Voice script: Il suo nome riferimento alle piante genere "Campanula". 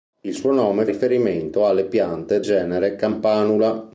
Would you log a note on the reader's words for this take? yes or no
no